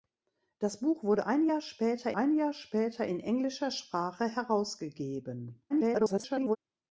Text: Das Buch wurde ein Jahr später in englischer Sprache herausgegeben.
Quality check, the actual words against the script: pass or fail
fail